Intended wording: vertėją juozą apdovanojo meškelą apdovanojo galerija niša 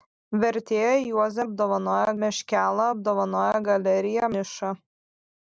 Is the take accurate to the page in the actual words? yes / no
yes